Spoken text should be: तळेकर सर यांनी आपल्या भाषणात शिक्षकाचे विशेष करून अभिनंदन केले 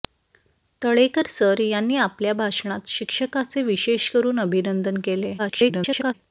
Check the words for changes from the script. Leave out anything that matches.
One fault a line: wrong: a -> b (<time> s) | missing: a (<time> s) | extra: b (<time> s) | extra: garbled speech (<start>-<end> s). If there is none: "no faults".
extra: garbled speech (5.4-6.1 s)